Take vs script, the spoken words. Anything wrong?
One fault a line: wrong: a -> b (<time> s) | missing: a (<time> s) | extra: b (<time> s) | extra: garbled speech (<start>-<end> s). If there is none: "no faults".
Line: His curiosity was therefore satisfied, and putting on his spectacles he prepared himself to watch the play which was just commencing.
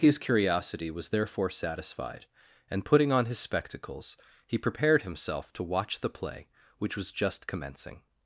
no faults